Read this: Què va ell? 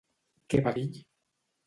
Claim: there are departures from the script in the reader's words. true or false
false